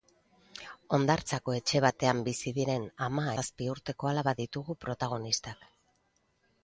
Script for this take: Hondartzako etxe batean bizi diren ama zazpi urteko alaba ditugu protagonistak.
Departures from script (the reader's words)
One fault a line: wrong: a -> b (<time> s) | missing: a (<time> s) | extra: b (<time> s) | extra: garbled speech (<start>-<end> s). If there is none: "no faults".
no faults